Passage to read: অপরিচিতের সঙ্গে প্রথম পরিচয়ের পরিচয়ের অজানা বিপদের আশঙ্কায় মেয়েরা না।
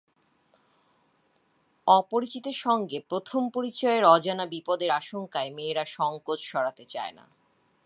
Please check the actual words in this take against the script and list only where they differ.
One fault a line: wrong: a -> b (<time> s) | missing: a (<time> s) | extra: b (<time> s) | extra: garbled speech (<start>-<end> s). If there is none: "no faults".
missing: পরিচয়ের (4.0 s)
extra: সংকোচ সরাতে চায় (5.8 s)